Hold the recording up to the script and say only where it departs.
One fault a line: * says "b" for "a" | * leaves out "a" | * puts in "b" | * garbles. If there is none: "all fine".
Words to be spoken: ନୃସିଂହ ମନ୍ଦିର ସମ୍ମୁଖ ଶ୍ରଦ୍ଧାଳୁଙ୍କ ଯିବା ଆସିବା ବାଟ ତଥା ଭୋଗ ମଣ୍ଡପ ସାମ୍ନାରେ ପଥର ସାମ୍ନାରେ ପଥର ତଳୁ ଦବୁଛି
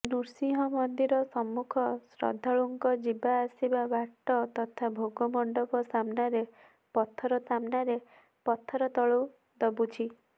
all fine